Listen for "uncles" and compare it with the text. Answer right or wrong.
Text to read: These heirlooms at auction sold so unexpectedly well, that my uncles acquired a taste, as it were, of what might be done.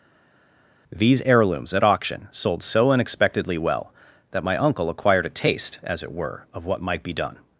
wrong